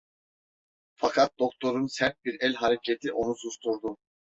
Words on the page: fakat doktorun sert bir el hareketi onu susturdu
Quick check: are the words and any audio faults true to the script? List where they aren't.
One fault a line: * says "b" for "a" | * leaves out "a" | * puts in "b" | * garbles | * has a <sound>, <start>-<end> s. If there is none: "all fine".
all fine